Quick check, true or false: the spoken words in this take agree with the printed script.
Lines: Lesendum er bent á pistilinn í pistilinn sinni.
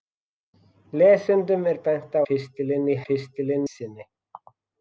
true